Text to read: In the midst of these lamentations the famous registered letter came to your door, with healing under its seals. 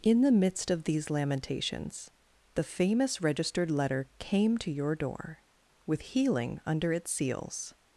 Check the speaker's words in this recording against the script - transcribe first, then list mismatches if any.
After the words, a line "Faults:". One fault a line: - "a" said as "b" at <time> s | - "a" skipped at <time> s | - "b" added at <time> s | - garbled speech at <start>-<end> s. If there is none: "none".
In the midst of these lamentations the famous registered letter came to your door, with healing under its seals.
Faults:
none